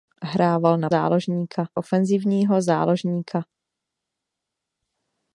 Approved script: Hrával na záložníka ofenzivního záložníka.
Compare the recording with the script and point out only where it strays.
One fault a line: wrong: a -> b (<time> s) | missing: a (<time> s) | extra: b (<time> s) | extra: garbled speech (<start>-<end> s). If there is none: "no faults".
no faults